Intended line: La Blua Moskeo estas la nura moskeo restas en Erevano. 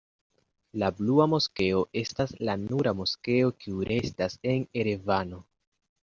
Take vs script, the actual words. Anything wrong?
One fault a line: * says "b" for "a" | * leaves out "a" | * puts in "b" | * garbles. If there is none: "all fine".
* puts in "kiu"